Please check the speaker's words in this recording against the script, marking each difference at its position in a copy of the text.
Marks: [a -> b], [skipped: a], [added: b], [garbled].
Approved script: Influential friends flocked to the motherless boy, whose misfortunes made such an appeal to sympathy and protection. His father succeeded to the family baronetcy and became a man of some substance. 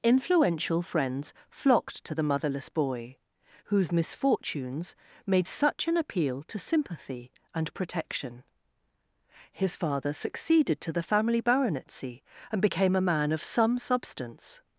Influential friends flocked to the motherless boy, whose misfortunes made such an appeal to sympathy and protection. His father succeeded to the family baronetcy and became a man of some substance.